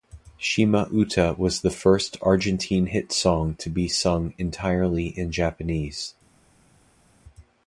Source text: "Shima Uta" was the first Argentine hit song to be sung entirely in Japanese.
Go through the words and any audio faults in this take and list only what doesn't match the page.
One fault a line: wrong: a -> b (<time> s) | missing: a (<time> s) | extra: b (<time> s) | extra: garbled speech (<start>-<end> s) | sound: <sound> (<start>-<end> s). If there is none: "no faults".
no faults